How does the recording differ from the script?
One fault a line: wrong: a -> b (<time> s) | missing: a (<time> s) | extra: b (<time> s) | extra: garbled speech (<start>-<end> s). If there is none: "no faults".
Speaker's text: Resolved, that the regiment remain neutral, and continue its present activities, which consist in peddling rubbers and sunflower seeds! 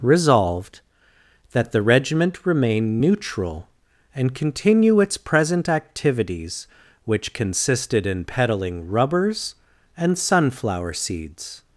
wrong: consist -> consisted (7.3 s)